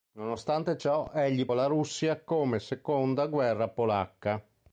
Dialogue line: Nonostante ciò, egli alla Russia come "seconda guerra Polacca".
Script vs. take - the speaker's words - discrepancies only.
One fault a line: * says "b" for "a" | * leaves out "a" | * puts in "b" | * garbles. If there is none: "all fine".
all fine